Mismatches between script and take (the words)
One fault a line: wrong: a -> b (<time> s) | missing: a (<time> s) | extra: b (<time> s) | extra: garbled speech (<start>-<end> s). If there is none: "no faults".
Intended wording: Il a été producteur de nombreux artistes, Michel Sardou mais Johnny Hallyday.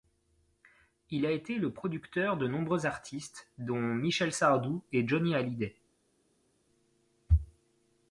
extra: le (1.6 s)
extra: dont (3.6 s)
wrong: mais -> et (4.9 s)